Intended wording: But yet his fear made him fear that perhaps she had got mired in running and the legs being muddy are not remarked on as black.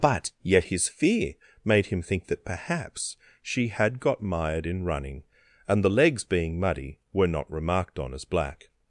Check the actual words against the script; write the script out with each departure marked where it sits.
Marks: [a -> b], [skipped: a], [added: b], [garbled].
But yet his fear made him [fear -> think] that perhaps she had got mired in running and the legs being muddy [are -> were] not remarked on as black.